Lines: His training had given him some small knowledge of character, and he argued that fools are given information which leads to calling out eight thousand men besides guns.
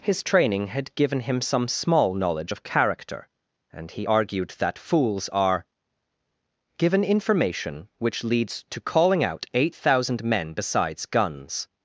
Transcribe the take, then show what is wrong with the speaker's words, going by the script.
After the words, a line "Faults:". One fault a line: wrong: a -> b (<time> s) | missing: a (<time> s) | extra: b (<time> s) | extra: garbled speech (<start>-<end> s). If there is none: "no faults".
His training had given him some small knowledge of character, and he argued that fools are given information which leads to calling out eight thousand men besides guns.
Faults:
no faults